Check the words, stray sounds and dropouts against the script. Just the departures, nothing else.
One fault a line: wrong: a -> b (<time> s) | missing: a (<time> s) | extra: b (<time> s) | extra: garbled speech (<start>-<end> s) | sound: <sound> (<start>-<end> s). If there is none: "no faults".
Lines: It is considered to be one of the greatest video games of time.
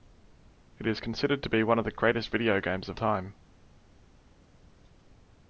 no faults